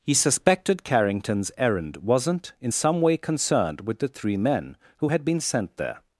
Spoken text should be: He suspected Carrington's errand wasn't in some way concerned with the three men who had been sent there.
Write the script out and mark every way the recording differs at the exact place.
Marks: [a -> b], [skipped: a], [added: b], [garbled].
He suspected Carrington's errand wasn't in some way concerned with the three men who had been sent there.